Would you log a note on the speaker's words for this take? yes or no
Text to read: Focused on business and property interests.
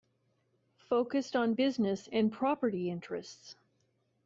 no